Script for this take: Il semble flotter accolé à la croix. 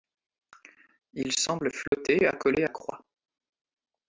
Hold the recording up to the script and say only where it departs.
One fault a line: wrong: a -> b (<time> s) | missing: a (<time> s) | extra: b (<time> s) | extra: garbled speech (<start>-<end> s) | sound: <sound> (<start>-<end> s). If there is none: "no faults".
sound: dropout (1.9-1.9 s)
missing: la (2.7 s)